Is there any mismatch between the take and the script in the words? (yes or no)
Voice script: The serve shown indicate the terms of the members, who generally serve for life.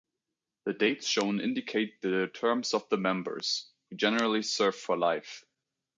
yes